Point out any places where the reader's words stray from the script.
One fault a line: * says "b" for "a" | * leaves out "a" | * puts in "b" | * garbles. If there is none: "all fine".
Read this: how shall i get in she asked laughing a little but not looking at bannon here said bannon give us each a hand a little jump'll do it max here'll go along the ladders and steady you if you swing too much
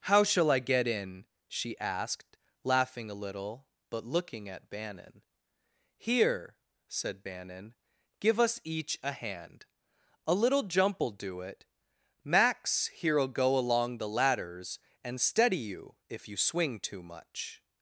* leaves out "not"